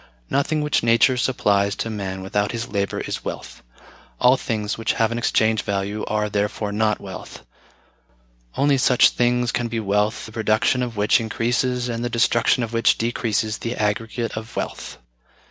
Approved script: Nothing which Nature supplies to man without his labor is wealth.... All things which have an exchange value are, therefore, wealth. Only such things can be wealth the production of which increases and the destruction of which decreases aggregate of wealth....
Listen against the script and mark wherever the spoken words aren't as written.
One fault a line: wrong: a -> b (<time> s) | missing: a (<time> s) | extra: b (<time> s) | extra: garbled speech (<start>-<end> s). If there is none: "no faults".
extra: not (6.7 s)
extra: the (13.6 s)